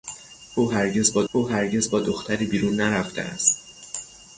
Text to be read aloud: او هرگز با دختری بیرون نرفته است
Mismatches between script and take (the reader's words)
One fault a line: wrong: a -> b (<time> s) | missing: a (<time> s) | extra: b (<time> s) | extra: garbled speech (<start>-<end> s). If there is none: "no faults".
extra: او هرگز با (1.3 s)